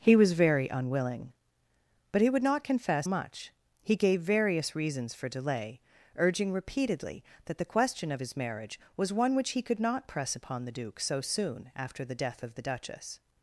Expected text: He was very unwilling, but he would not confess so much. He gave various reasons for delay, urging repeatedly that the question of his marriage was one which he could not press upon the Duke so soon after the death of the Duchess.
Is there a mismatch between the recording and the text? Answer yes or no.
yes